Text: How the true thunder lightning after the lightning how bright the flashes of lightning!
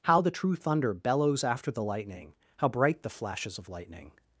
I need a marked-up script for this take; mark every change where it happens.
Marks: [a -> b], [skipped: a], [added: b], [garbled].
How the true thunder [lightning -> bellows] after the lightning how bright the flashes of lightning!